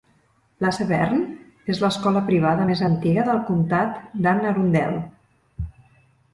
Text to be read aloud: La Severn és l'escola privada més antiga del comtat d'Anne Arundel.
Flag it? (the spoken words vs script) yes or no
no